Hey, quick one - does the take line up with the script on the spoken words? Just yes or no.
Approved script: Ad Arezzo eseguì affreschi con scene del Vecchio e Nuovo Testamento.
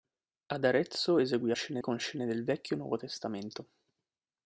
no